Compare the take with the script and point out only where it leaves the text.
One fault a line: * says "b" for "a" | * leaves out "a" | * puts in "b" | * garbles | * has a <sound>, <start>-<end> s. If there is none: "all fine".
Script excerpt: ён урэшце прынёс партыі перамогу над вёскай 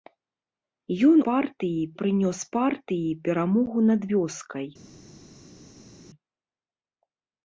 * says "партыі" for "урэшце"